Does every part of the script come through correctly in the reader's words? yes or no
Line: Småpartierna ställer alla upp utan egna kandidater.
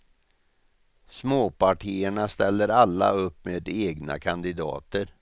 no